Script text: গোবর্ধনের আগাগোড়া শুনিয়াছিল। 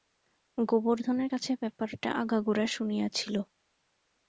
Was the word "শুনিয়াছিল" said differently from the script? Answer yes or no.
no